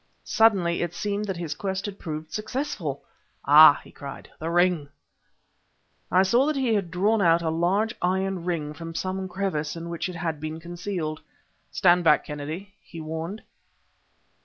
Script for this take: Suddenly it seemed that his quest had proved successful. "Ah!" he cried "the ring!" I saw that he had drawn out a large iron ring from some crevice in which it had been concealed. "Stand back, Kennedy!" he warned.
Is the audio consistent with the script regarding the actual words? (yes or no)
yes